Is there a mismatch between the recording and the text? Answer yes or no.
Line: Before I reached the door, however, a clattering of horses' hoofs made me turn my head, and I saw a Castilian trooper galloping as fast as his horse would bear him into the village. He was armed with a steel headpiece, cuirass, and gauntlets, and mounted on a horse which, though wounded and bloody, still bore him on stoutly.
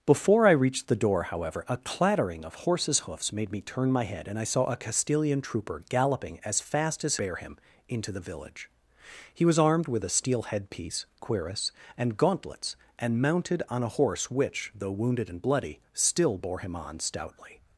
yes